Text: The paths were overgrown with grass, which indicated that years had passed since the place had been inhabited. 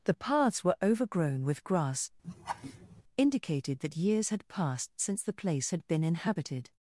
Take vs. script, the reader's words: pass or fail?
fail